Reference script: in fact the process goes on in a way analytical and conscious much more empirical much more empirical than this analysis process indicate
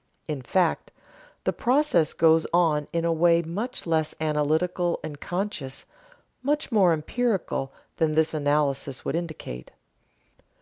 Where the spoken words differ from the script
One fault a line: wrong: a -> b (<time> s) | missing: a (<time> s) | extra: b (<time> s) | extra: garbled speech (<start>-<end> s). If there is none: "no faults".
extra: much less (3.4 s)
missing: much more empirical (7.7 s)
wrong: process -> would (9.0 s)